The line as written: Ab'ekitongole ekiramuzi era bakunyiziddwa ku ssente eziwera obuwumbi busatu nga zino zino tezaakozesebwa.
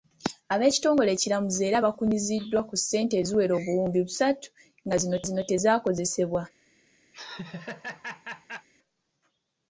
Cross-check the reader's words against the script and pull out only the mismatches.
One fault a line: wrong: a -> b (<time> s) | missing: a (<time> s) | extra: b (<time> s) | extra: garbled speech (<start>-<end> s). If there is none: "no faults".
no faults